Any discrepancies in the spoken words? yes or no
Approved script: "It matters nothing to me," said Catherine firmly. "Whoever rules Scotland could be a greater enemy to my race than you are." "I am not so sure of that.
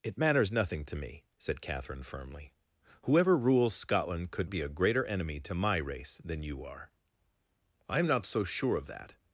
no